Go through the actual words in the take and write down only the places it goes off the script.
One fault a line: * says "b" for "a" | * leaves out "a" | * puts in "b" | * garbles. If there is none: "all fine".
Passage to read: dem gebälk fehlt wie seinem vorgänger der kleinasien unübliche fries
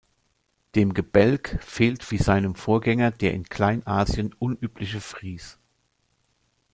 * puts in "in"